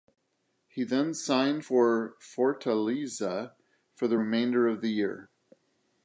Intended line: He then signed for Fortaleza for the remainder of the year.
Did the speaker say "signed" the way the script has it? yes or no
yes